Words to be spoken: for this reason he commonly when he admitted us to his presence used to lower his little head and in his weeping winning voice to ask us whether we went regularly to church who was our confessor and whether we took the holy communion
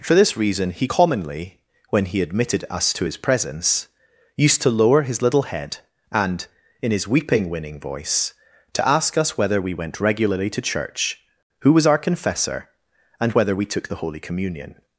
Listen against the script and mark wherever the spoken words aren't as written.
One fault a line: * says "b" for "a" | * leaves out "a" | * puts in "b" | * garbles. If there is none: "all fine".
all fine